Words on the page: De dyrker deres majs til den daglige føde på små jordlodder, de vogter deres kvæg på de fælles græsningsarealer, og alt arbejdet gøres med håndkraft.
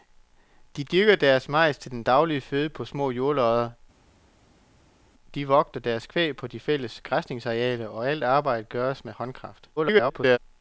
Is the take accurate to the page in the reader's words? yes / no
no